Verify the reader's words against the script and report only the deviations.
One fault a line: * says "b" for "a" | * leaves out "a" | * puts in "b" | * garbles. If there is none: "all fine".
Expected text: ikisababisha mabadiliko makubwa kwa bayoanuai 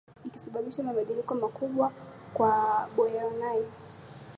all fine